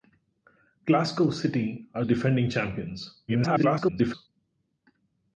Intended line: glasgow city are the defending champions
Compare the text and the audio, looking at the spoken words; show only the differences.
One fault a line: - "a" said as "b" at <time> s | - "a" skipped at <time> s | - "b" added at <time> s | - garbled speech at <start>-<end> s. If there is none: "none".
- "the" skipped at 2.0 s
- garbled speech at 3.3-4.3 s